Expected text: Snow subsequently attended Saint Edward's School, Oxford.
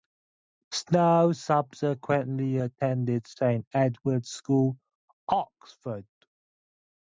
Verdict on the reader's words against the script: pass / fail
pass